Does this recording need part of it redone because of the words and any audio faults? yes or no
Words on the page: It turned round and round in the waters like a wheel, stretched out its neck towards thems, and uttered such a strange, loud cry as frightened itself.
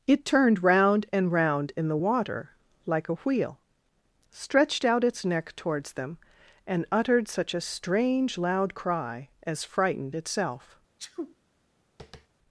yes